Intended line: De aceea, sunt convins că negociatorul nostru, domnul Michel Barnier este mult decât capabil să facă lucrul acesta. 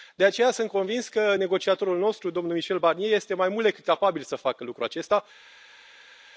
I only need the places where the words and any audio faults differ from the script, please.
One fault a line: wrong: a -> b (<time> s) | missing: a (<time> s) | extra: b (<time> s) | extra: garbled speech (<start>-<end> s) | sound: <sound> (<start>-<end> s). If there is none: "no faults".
extra: mai (3.3 s)